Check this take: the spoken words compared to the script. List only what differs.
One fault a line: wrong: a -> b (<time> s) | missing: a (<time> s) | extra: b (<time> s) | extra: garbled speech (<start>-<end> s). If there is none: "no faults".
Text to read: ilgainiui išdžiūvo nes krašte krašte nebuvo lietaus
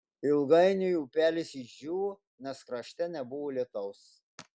extra: upelis (1.0 s)
missing: krašte (3.1 s)